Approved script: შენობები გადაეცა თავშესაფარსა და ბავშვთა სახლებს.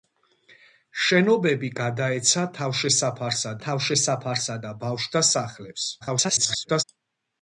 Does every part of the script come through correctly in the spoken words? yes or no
no